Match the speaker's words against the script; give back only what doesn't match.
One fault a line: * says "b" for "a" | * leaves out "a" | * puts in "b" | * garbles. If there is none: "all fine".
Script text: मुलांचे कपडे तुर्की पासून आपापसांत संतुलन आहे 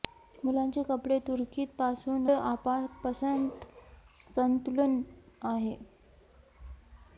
all fine